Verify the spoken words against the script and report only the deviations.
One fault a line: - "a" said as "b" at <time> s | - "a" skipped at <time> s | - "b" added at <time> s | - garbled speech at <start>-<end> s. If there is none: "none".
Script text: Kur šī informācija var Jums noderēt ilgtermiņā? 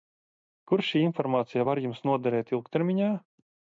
none